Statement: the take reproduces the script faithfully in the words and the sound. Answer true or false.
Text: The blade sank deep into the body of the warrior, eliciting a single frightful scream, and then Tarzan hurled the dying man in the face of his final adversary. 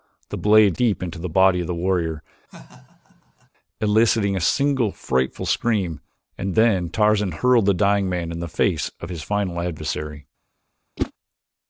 false